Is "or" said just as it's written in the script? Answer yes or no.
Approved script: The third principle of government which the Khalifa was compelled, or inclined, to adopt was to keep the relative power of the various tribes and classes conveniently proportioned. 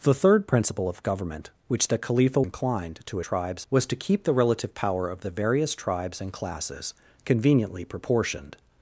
no